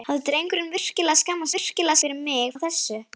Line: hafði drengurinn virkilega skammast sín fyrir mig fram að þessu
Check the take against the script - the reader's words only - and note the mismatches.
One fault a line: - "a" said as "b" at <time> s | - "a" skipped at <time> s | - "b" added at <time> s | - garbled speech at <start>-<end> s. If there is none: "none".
- "sín" said as "virkilega" at 1.5 s
- "fram" skipped at 2.5 s